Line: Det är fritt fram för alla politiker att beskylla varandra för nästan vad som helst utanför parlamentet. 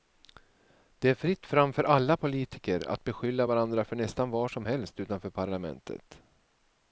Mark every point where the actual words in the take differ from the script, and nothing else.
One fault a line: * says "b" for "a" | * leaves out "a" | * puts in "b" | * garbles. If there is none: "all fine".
all fine